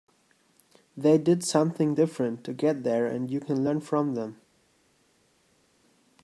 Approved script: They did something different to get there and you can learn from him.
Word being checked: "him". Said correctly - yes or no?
no